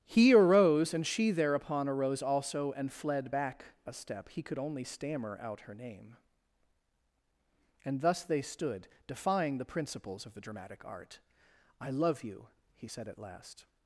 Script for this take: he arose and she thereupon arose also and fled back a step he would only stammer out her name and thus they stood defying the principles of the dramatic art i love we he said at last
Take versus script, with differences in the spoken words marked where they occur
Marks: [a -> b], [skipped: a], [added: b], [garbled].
he arose and she thereupon arose also and fled back a step he [would -> could] only stammer out her name and thus they stood defying the principles of the dramatic art i love [we -> you] he said at last